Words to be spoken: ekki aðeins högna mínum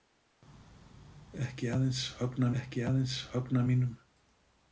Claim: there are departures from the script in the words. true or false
true